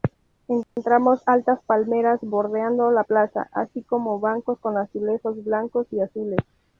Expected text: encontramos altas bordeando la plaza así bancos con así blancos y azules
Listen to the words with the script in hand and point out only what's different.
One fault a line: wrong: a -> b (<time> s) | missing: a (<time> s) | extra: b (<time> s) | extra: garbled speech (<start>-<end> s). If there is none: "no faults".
extra: palmeras (1.6 s)
extra: como (3.8 s)
wrong: así -> azulejos (4.8 s)